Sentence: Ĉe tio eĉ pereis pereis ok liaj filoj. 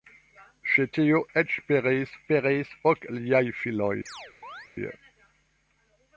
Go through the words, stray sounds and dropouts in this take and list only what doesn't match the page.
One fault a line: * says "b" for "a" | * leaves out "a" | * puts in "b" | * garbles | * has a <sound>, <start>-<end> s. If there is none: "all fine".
* has a chirp, 4.1-4.7 s